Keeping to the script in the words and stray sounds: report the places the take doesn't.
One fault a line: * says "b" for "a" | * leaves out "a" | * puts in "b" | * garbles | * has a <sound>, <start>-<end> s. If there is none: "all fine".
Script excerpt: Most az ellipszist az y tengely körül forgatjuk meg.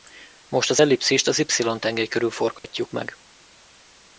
* has a dropout, 2.6-2.6 s